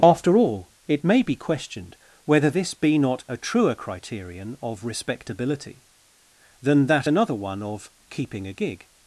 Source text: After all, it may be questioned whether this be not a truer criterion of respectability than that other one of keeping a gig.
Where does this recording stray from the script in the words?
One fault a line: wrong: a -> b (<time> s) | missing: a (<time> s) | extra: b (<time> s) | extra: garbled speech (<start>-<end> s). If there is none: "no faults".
wrong: other -> another (7.1 s)